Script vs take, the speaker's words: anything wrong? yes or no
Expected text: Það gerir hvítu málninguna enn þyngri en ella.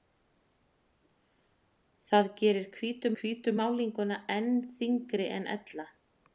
yes